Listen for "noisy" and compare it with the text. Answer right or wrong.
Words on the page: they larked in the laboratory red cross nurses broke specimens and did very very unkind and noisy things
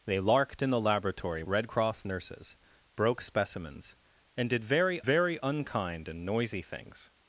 right